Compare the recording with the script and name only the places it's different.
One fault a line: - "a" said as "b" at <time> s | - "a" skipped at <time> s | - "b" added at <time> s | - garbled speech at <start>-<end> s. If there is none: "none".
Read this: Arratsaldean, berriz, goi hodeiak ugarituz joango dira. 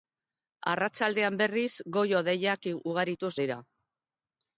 - "joango" skipped at 3.3 s